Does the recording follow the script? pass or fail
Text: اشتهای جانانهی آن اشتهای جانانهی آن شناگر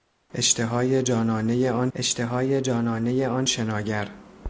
pass